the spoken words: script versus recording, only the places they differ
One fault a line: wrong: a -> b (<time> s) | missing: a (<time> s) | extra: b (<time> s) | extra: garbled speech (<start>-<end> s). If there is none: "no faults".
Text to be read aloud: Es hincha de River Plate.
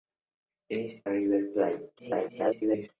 missing: hincha (1.0 s)
extra: garbled speech (2.0-2.9 s)